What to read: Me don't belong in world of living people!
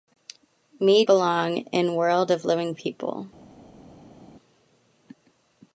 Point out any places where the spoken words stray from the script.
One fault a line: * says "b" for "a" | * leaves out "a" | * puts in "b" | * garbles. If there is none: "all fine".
* leaves out "don't"